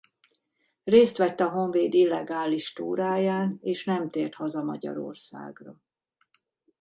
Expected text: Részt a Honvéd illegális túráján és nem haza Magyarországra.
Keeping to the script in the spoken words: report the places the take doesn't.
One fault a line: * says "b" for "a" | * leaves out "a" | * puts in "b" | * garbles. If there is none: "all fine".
* puts in "vett"
* puts in "tért"